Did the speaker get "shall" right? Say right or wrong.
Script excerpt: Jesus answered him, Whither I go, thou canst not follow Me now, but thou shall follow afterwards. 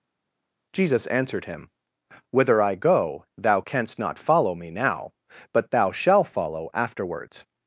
wrong